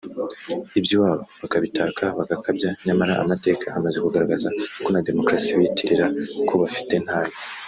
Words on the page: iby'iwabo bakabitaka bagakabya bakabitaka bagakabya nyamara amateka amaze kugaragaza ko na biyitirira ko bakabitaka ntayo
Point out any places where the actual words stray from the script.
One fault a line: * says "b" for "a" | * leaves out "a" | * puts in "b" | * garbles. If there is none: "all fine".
* leaves out "bakabitaka bagakabya"
* puts in "demokarasi"
* says "bafite" for "bakabitaka"